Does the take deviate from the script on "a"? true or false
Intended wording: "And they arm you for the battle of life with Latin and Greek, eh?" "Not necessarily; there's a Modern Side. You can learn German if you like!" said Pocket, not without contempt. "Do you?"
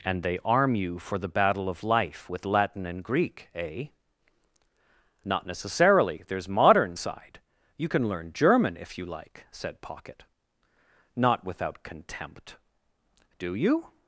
true